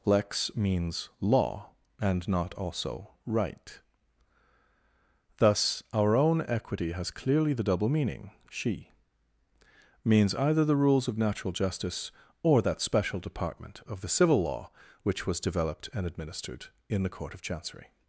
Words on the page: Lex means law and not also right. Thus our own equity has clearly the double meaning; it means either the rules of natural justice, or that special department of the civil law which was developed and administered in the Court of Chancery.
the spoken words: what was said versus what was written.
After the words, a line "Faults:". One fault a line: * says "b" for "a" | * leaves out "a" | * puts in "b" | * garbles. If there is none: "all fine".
Lex means law and not also right. Thus our own equity has clearly the double meaning; she means either the rules of natural justice, or that special department of the civil law which was developed and administered in the Court of Chancery.
Faults:
* says "she" for "it"